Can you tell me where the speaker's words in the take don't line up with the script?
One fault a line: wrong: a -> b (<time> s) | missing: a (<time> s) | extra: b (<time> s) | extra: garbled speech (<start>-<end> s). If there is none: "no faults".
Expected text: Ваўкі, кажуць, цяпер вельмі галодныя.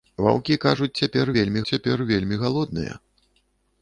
extra: цяпер вельмі (1.7 s)